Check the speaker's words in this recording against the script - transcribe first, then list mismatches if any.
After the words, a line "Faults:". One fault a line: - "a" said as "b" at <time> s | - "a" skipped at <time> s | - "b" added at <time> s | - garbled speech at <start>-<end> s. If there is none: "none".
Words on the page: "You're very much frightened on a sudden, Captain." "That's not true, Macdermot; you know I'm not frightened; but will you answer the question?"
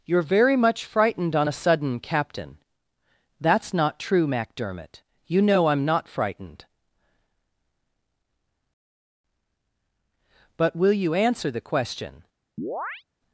"You're very much frightened on a sudden, Captain." "That's not true, Macdermot; you know I'm not frightened; but will you answer the question?"
Faults:
none